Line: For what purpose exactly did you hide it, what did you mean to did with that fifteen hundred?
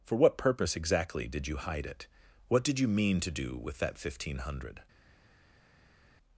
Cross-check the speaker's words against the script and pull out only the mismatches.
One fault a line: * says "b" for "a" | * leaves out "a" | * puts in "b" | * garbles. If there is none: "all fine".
* says "do" for "did"